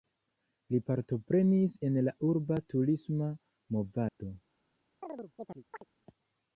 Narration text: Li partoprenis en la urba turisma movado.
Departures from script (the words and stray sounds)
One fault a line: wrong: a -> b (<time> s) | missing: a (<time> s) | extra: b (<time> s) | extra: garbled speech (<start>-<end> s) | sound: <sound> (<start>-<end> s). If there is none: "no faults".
sound: dropout (4.1-4.2 s)
sound: chirp (5.0-5.8 s)